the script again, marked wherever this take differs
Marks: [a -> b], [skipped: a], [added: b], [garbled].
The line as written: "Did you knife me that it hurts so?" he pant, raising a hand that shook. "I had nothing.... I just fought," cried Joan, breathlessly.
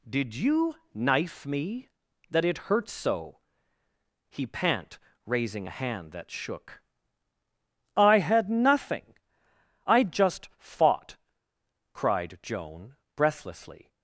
"Did you knife me that it hurts so?" he pant, raising a hand that shook. "I had nothing.... I just fought," cried Joan, breathlessly.